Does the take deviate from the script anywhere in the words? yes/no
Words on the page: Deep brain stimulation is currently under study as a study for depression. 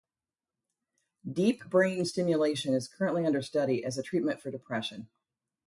yes